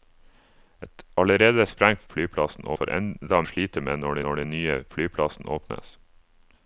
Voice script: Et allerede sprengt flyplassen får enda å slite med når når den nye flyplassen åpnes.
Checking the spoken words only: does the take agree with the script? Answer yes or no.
yes